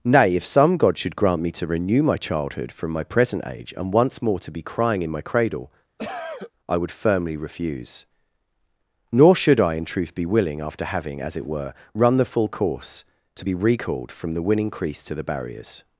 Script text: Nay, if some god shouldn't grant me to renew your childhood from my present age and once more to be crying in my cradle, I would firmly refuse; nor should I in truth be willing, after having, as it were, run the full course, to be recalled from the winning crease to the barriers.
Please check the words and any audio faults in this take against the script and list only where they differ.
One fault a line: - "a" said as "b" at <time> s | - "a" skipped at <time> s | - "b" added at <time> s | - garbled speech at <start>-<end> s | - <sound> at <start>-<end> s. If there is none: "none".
- "shouldn't" said as "should" at 1.0 s
- "your" said as "my" at 2.0 s
- cough at 6.0-6.5 s